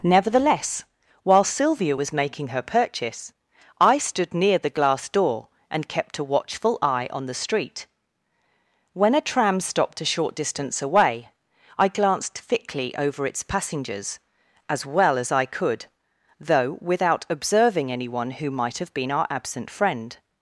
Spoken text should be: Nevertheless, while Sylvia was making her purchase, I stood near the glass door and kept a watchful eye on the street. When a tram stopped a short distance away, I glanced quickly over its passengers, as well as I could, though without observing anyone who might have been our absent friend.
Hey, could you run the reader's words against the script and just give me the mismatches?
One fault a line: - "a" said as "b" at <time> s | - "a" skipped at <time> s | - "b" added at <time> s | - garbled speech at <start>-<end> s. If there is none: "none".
- "quickly" said as "thickly" at 12.4 s